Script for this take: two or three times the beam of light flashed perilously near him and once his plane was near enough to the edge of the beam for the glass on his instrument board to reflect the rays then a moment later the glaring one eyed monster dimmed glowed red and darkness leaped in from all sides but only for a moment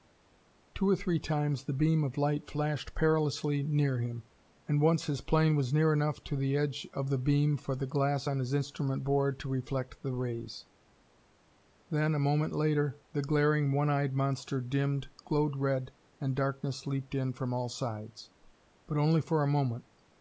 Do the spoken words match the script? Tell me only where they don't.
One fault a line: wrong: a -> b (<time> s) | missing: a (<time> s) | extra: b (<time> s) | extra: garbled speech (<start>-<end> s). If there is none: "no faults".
no faults